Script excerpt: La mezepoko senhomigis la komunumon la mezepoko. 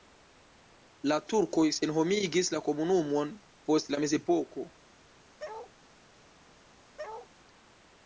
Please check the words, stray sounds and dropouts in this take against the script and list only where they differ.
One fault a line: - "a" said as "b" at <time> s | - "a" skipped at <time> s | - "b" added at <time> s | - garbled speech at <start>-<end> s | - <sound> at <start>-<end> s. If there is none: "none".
- "mezepoko" said as "turkoj" at 1.3 s
- "post" added at 3.7 s
- bark at 5.4-5.7 s
- bark at 7.0-7.3 s